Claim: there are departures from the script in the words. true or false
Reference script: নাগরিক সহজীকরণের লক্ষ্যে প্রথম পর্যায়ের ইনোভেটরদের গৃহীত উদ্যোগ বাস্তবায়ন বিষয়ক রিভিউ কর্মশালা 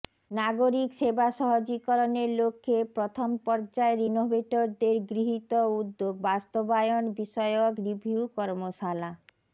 true